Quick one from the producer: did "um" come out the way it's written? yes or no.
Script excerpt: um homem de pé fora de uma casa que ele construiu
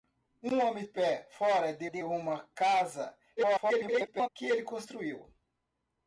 yes